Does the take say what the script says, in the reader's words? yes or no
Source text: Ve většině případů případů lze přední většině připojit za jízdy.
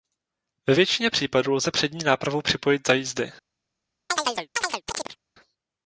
no